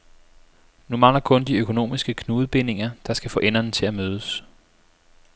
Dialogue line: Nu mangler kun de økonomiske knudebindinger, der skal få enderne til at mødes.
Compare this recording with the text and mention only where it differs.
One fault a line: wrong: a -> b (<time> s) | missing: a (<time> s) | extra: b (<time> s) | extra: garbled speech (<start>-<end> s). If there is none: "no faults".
no faults